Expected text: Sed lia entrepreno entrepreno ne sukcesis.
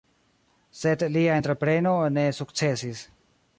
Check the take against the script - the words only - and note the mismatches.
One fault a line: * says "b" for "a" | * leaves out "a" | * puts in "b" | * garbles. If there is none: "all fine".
* leaves out "entrepreno"